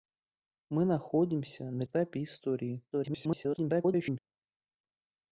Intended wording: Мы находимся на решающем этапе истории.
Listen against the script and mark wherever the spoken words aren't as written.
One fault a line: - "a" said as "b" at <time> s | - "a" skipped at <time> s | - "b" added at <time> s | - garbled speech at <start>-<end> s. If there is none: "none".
- "решающем" skipped at 1.8 s
- garbled speech at 2.9-4.2 s